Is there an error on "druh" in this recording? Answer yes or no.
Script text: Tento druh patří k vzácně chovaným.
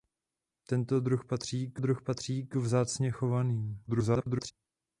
no